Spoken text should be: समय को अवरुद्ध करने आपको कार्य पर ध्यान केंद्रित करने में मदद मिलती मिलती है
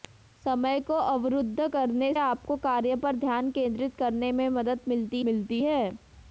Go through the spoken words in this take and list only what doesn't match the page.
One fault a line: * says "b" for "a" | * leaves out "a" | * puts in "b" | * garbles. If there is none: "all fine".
all fine